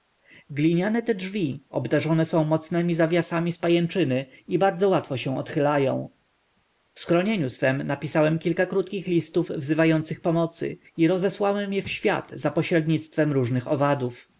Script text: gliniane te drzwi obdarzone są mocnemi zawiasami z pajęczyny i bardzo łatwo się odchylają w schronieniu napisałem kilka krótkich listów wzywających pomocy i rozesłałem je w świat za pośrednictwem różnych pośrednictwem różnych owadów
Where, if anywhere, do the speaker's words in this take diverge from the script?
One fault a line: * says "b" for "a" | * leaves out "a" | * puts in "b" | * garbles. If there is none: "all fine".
* puts in "swem"
* leaves out "pośrednictwem różnych"